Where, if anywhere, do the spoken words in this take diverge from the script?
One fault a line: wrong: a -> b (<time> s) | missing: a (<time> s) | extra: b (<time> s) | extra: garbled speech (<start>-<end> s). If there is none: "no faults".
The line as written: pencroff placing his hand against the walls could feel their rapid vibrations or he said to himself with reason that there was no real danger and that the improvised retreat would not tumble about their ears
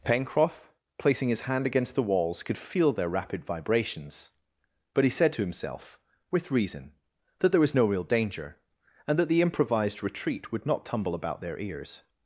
wrong: or -> but (4.9 s)